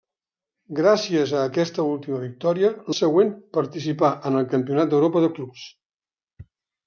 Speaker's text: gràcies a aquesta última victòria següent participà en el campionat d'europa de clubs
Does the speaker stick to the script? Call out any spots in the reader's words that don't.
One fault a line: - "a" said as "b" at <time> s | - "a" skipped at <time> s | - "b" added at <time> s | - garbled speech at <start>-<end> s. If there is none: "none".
none